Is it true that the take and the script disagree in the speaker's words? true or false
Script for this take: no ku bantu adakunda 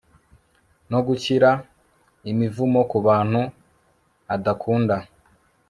true